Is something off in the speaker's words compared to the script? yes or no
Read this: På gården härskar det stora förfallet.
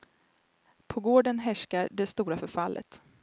no